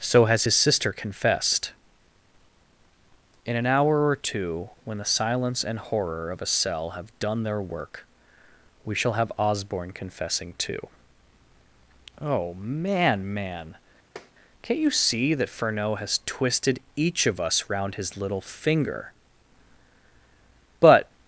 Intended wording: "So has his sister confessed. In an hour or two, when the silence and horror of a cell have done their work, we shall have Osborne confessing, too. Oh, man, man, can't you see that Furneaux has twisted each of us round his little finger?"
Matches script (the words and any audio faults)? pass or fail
fail